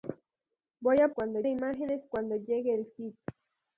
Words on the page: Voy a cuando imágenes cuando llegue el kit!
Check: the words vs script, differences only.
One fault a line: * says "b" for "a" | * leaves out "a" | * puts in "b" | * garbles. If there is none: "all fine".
all fine